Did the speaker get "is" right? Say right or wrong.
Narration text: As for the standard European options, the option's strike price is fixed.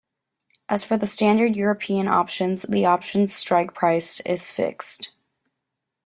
right